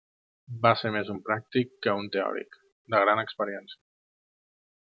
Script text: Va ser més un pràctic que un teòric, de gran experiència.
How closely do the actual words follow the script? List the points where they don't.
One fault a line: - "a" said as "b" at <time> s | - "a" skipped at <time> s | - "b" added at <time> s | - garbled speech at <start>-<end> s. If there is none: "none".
none